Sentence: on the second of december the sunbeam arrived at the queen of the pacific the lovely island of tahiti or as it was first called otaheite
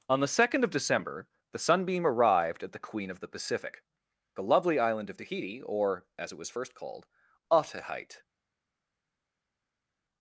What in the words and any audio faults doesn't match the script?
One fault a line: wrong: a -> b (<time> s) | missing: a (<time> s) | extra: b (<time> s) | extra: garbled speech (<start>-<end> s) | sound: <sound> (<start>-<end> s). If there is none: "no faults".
no faults